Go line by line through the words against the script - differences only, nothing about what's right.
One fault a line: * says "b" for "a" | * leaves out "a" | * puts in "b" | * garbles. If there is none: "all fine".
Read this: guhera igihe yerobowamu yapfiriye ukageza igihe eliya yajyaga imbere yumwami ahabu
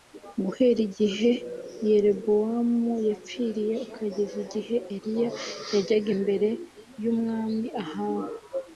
all fine